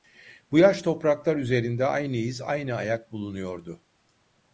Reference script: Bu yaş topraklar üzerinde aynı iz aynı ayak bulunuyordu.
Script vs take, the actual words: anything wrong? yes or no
no